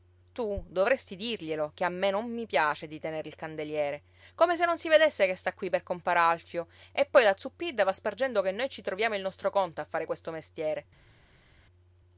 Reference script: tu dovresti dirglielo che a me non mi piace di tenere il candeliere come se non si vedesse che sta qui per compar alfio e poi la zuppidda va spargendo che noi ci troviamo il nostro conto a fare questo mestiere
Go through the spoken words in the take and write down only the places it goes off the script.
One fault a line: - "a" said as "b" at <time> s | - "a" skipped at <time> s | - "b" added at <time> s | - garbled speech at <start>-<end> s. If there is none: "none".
none